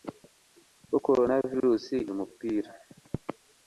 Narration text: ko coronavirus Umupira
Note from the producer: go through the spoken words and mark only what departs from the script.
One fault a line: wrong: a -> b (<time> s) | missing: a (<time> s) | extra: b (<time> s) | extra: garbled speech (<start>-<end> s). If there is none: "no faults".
no faults